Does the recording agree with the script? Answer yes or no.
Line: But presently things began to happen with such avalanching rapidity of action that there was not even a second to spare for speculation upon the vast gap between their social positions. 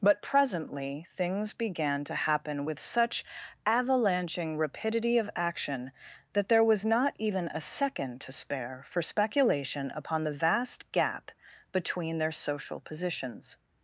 yes